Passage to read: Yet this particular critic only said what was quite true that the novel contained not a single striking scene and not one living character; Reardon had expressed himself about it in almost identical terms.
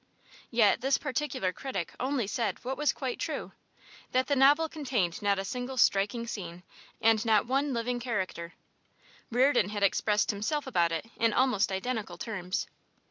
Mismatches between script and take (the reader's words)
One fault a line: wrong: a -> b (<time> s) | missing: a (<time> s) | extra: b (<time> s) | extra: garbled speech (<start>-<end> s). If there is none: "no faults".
no faults